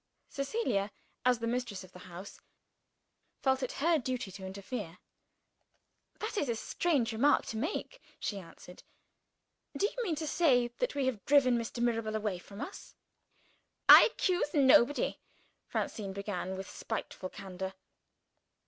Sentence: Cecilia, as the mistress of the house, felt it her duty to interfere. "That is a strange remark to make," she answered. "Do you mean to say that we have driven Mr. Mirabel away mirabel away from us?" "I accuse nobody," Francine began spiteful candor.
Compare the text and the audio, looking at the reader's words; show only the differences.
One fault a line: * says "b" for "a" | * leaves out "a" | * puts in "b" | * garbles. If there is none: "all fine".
* leaves out "mirabel away"
* puts in "with"